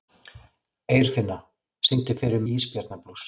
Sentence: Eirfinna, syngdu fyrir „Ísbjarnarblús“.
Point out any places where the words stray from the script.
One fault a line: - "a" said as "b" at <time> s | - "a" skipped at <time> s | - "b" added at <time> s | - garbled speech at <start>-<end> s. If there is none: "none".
none